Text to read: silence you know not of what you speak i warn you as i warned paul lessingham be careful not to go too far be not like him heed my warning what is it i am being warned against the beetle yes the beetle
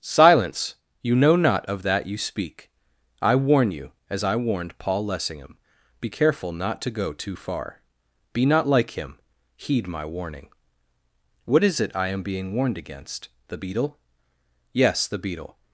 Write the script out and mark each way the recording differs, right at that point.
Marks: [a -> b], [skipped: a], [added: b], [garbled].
silence you know not of [what -> that] you speak i warn you as i warned paul lessingham be careful not to go too far be not like him heed my warning what is it i am being warned against the beetle yes the beetle